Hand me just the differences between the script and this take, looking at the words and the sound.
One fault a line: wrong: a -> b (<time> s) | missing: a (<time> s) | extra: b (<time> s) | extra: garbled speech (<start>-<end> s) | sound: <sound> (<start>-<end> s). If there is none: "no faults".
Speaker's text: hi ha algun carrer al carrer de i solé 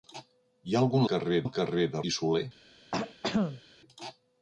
sound: throat clearing (2.9-3.6 s)